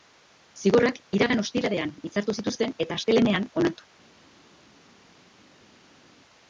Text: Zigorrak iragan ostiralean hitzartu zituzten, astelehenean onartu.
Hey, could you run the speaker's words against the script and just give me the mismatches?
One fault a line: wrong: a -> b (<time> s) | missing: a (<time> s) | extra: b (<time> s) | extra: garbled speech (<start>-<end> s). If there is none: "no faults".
extra: eta (2.9 s)